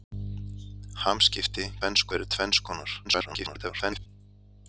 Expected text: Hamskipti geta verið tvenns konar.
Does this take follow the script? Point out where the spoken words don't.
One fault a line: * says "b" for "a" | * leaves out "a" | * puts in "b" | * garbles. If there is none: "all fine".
* says "tvenns" for "geta"
* garbles